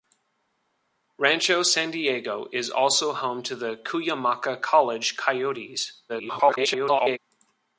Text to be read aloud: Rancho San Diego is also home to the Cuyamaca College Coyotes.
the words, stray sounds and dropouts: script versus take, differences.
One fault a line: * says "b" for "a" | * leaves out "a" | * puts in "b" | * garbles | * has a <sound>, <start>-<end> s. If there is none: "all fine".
* garbles